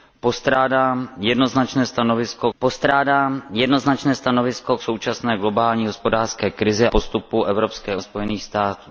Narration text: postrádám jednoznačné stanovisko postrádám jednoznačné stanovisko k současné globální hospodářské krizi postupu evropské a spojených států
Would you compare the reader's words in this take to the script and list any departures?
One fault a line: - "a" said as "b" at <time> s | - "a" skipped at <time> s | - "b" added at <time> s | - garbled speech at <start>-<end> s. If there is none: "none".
none